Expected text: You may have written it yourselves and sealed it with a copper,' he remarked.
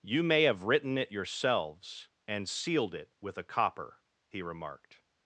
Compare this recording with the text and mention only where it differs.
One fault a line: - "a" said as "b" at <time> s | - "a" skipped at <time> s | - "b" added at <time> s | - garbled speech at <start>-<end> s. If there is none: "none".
none